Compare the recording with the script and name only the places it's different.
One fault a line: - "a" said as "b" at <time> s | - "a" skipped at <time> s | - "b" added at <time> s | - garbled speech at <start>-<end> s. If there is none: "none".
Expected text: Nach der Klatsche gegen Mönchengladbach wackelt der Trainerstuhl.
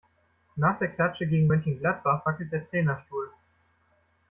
none